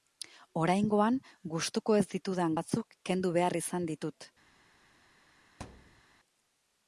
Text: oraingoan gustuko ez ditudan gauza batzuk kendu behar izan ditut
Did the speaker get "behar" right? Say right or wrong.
right